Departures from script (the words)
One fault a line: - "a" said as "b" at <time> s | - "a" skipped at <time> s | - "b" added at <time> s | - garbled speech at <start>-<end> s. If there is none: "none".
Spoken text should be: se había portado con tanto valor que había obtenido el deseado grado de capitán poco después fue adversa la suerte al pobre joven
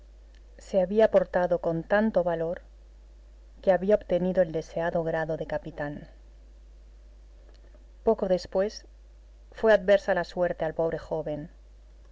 none